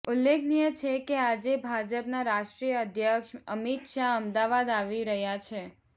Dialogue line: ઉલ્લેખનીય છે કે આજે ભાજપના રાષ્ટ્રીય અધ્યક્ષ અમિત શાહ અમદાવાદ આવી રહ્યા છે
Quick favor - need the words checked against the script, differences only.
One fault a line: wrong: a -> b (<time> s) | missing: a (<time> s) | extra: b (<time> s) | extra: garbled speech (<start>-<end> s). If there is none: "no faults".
no faults